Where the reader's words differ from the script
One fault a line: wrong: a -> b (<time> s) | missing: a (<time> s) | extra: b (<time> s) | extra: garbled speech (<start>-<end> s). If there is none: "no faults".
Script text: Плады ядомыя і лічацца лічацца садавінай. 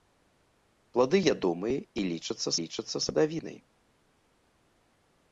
no faults